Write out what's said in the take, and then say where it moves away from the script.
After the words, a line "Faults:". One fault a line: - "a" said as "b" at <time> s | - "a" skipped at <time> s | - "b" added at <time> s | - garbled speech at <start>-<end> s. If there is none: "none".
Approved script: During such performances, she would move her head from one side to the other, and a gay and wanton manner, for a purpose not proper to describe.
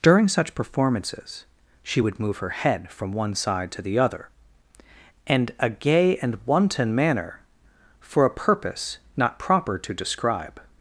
During such performances, she would move her head from one side to the other, and a gay and wanton manner, for a purpose not proper to describe.
Faults:
none